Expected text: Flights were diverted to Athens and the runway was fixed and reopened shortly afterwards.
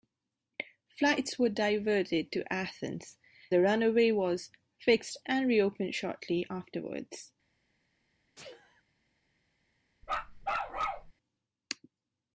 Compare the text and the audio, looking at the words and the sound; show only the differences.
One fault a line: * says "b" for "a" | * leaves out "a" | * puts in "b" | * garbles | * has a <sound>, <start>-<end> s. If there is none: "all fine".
* leaves out "and"
* has a sneeze, 8.4-8.8 s
* has a bark, 10.0-11.1 s